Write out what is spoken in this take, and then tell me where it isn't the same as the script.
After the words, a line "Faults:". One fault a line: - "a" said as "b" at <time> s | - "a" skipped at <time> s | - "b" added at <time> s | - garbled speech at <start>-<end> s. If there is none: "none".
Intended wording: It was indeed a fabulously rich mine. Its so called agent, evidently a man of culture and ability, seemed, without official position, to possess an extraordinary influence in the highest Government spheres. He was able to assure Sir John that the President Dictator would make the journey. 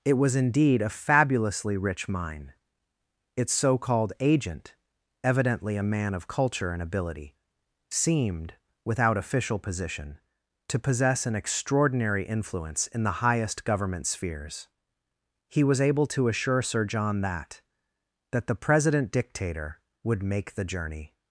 It was indeed a fabulously rich mine. Its so called agent, evidently a man of culture and ability, seemed, without official position, to possess an extraordinary influence in the highest Government spheres. He was able to assure Sir John that that the President Dictator would make the journey.
Faults:
- "that" added at 18.3 s